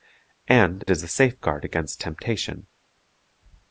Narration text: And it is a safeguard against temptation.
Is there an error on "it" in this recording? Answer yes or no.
yes